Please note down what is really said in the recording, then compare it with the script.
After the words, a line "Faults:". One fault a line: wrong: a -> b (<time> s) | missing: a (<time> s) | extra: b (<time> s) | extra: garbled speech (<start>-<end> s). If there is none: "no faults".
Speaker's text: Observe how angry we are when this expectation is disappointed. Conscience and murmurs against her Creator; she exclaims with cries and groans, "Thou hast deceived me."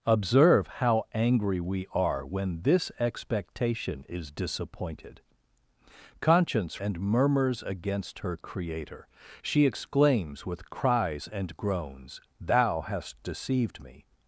Observe how angry we are when this expectation is disappointed. Conscience and murmurs against her Creator; she exclaims with cries and groans, "Thou hast deceived me."
Faults:
no faults